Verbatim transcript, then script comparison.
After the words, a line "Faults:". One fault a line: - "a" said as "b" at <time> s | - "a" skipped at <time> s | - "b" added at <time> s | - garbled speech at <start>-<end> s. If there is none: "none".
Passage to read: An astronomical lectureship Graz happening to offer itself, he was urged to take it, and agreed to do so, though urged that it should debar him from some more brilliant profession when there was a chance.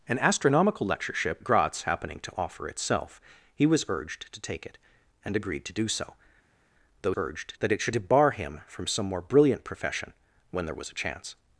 An astronomical lectureship Graz happening to offer itself, he was urged to take it, and agreed to do so, though urged that it should debar him from some more brilliant profession when there was a chance.
Faults:
none